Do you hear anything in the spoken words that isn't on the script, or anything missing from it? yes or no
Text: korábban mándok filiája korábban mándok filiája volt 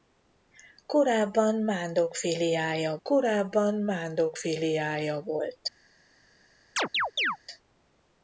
no